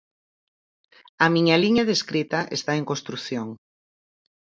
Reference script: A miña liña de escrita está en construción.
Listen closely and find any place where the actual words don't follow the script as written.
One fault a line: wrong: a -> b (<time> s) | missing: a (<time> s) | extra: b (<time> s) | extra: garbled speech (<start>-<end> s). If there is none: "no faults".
no faults